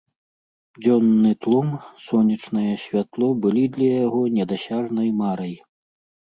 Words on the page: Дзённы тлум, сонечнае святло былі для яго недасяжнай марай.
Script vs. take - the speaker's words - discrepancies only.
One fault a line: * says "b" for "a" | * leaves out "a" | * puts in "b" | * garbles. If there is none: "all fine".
all fine